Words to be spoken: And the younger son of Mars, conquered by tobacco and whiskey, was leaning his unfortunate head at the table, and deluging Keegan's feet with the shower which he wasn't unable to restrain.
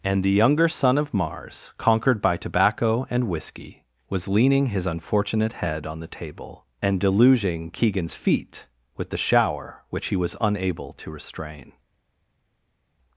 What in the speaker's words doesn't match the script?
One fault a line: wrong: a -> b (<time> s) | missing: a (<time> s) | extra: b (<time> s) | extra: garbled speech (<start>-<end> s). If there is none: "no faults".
wrong: at -> on (5.8 s)
wrong: wasn't -> was (10.2 s)